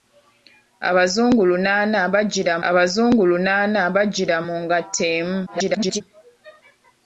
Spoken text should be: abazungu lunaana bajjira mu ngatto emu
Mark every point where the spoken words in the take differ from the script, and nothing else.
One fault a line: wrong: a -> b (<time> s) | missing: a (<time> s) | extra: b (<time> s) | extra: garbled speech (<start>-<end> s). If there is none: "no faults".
extra: abazungu lunaana bajjira (2.7 s)
extra: garbled speech (5.5-6.0 s)